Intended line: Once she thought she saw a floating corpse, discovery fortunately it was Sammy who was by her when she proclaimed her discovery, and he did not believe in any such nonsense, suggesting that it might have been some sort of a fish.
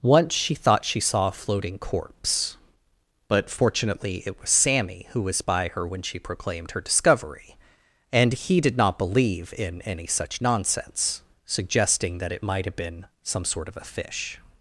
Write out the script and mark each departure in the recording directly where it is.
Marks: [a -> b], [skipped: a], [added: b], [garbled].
Once she thought she saw a floating corpse, [discovery -> but] fortunately it was Sammy who was by her when she proclaimed her discovery, and he did not believe in any such nonsense, suggesting that it might have been some sort of a fish.